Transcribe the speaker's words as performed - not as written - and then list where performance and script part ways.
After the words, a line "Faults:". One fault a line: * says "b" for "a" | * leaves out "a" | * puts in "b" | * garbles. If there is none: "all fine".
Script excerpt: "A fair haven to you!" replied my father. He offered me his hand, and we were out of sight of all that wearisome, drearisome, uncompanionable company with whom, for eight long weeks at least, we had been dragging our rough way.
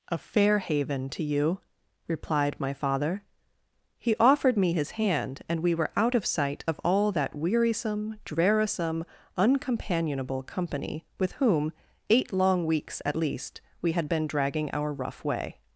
"A fair haven to you!" replied my father. He offered me his hand, and we were out of sight of all that wearisome, drearisome, uncompanionable company with whom, eight long weeks at least, we had been dragging our rough way.
Faults:
* leaves out "for"